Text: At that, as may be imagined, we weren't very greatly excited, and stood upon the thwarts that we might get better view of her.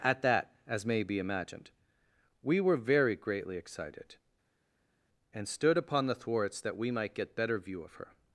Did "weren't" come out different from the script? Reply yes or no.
yes